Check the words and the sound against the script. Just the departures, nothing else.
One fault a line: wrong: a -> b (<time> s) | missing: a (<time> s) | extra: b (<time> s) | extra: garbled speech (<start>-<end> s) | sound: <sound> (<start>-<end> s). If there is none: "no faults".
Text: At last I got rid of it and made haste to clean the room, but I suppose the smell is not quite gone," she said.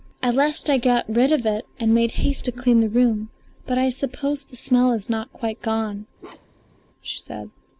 sound: bark (6.2-6.8 s)